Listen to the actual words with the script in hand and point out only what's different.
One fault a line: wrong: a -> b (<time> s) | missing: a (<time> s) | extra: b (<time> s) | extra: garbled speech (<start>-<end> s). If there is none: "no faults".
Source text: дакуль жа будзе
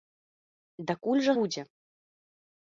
no faults